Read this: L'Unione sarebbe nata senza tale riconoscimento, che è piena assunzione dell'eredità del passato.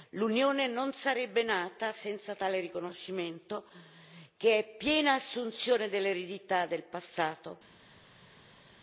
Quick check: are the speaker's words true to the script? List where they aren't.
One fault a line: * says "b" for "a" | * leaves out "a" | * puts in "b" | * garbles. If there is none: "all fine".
* puts in "non"